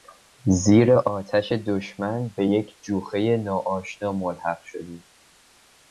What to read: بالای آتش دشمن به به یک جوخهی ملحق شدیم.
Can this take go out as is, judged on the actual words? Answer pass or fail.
fail